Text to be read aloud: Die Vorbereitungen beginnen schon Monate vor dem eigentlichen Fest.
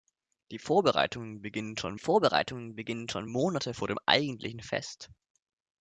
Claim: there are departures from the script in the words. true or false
true